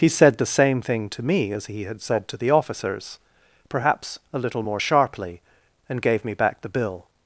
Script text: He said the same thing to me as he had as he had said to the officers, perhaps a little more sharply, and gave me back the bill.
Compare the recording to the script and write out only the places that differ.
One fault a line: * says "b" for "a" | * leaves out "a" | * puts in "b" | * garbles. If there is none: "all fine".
* leaves out "as he had"